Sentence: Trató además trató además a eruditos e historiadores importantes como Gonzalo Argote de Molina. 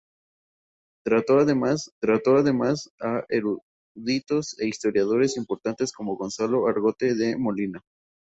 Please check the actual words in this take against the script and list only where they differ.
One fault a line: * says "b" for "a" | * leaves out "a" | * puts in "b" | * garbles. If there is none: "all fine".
all fine